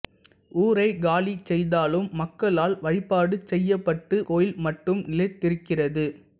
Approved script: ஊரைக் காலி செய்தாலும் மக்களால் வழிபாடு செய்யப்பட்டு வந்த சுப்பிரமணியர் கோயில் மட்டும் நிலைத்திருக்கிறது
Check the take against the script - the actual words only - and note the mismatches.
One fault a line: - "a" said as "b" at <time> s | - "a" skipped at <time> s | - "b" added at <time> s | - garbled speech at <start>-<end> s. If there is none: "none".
- "வந்த சுப்பிரமணியர்" skipped at 4.2 s